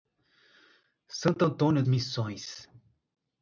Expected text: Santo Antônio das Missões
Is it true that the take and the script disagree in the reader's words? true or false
true